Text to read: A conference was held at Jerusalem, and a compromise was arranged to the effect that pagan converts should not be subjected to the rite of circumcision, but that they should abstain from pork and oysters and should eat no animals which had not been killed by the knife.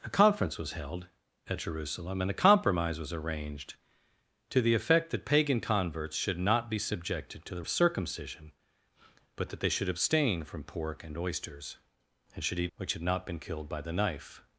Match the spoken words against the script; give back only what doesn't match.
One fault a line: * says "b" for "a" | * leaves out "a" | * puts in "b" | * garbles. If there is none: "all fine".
* leaves out "rite"
* leaves out "no animals"